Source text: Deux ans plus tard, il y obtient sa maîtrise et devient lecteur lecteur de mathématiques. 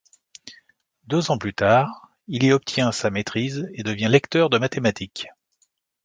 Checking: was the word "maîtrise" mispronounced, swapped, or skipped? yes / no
no